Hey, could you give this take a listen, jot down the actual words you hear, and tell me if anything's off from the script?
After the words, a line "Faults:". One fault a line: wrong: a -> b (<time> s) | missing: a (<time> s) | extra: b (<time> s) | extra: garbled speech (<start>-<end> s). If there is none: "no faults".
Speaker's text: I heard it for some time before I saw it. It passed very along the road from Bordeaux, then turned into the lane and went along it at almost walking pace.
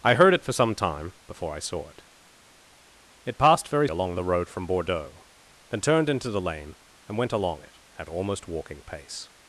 I heard it for some time before I saw it. It passed very along the road from Bordeaux, then turned into the lane and went along it at almost walking pace.
Faults:
no faults